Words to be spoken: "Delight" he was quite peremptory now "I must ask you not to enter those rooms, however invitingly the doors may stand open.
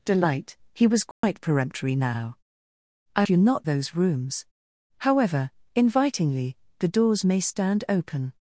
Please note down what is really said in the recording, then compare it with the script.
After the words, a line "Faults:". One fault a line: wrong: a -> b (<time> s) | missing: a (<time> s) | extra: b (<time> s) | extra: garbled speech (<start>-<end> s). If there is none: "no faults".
"Delight" he was quite peremptory now "I you not those rooms, however invitingly the doors may stand open.
Faults:
missing: must ask (3.3 s)
missing: to enter (3.7 s)